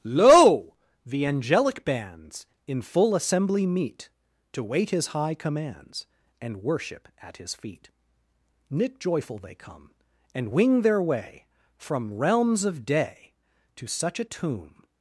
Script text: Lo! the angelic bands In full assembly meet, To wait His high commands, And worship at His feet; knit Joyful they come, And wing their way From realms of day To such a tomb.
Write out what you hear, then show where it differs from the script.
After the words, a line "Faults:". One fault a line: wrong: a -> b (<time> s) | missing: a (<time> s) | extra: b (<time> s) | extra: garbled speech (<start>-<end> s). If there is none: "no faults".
Lo! the angelic bands In full assembly meet, To wait His high commands, And worship at His feet; knit Joyful they come, And wing their way From realms of day To such a tomb.
Faults:
no faults